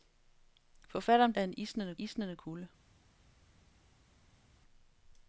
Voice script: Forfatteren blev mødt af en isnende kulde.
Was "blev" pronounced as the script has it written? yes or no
no